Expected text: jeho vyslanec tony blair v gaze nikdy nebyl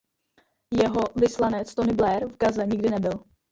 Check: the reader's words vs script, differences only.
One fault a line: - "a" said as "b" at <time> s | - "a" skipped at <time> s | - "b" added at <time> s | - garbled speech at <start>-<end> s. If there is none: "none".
none